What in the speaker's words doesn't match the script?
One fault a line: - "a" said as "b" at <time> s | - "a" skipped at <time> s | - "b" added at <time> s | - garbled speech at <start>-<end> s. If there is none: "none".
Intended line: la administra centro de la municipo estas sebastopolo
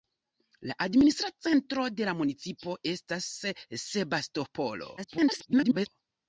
- garbled speech at 5.0-5.9 s